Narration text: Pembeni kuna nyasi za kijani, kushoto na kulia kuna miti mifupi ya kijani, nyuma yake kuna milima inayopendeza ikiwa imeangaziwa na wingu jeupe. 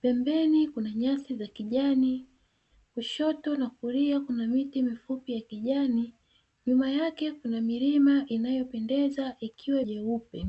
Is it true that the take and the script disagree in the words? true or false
true